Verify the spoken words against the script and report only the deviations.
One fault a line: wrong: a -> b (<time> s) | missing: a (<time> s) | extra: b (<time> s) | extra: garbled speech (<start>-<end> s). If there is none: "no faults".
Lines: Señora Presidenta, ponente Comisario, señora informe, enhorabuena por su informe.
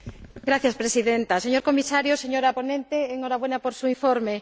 wrong: ponente -> señor (1.4 s)
wrong: informe -> ponente (2.6 s)